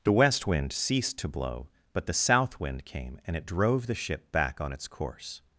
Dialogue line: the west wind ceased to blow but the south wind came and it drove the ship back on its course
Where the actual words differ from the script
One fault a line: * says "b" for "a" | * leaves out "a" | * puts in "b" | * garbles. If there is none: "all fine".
all fine